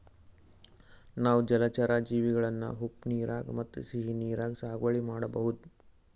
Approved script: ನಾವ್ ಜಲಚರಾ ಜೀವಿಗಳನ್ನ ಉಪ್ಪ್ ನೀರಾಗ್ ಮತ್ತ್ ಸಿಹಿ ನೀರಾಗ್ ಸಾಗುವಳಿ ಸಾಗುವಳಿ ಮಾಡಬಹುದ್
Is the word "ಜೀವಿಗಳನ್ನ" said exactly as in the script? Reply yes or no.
yes